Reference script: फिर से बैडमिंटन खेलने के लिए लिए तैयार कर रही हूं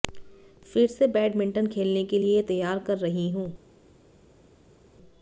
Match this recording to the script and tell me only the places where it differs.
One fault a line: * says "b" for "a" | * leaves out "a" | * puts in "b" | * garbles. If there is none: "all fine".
* leaves out "लिए"